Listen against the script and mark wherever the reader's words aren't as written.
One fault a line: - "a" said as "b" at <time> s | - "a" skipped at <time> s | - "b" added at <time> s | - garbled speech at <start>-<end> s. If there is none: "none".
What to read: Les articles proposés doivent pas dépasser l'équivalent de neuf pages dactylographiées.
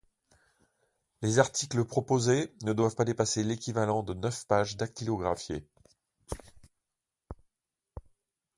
- "ne" added at 2.6 s